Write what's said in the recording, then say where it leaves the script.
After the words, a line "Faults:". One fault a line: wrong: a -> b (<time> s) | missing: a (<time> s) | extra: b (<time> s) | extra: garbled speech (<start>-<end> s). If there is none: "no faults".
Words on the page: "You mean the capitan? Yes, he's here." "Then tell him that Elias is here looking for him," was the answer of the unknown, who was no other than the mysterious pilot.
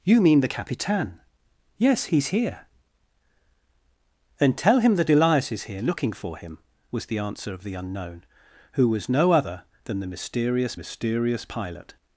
"You mean the capitan? Yes, he's here." "Then tell him that Elias is here looking for him," was the answer of the unknown, who was no other than the mysterious mysterious pilot.
Faults:
extra: mysterious (10.7 s)